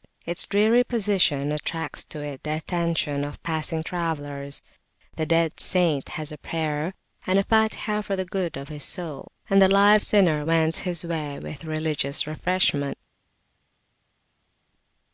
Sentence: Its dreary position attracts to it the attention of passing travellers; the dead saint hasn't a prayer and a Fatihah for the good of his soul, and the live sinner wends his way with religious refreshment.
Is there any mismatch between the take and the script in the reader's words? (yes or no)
yes